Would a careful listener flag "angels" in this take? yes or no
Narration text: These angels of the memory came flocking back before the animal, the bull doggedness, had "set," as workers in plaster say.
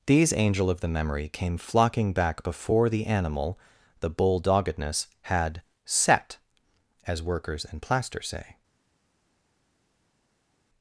yes